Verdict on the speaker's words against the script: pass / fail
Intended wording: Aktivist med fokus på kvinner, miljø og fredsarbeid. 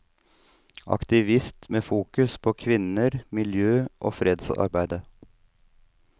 pass